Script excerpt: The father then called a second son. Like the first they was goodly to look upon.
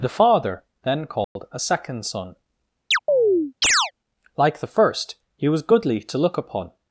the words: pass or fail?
fail